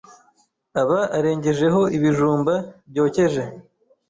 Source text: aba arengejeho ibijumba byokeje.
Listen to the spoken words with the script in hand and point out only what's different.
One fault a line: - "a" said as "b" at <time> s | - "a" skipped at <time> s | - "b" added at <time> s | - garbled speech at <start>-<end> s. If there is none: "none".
none